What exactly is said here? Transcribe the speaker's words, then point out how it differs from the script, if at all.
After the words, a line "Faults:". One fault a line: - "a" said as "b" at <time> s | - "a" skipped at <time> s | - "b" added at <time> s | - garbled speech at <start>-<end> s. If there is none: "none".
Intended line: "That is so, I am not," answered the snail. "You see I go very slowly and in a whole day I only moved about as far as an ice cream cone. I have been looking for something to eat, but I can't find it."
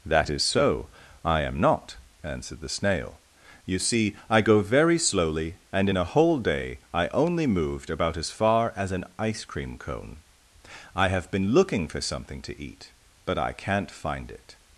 "That is so, I am not," answered the snail. "You see I go very slowly and in a whole day I only moved about as far as an ice cream cone. I have been looking for something to eat, but I can't find it."
Faults:
none